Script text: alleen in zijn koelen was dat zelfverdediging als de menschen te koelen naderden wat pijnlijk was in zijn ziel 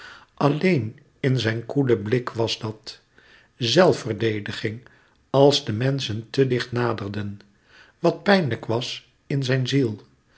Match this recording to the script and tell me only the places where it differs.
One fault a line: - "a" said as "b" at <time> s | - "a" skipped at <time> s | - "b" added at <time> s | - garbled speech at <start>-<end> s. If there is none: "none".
- "blik" added at 2.0 s
- "koelen" said as "dicht" at 6.5 s